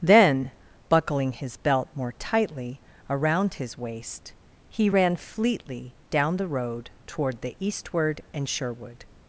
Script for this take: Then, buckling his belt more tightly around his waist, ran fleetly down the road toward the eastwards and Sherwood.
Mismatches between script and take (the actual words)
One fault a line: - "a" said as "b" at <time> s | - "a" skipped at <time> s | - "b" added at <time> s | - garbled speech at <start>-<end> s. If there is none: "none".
- "he" added at 4.7 s
- "eastwards" said as "eastward" at 7.6 s